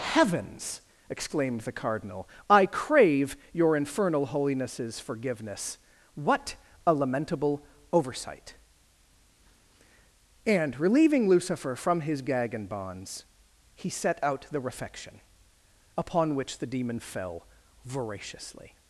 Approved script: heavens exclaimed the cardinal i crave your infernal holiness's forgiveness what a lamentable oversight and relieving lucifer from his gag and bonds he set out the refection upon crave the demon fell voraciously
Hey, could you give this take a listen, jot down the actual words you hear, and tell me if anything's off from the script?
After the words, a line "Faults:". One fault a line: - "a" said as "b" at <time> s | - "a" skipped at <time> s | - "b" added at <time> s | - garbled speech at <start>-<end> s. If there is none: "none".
heavens exclaimed the cardinal i crave your infernal holiness's forgiveness what a lamentable oversight and relieving lucifer from his gag and bonds he set out the refection upon which the demon fell voraciously
Faults:
- "crave" said as "which" at 16.4 s